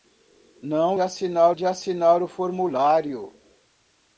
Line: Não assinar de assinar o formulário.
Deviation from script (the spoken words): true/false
false